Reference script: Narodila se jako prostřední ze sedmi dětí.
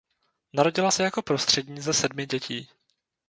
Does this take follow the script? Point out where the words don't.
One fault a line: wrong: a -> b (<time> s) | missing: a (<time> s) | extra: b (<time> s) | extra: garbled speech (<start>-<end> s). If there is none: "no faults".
no faults